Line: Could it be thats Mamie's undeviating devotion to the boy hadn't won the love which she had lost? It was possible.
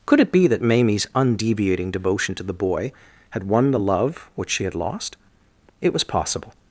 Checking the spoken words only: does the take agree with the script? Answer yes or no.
no